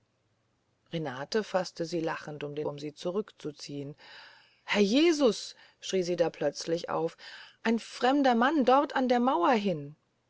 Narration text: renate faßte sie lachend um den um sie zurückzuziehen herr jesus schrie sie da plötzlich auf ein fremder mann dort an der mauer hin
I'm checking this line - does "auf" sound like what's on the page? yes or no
yes